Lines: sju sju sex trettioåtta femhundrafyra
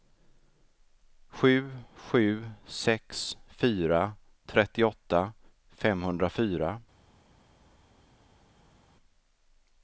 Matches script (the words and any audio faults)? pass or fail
fail